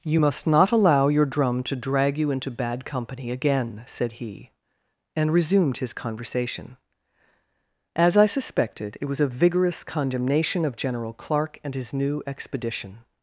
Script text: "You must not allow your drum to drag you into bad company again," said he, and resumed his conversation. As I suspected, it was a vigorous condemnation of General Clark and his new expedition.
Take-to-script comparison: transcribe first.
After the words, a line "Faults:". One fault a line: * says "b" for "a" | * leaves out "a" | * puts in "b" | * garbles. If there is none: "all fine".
"You must not allow your drum to drag you into bad company again," said he, and resumed his conversation. As I suspected, it was a vigorous condemnation of General Clark and his new expedition.
Faults:
all fine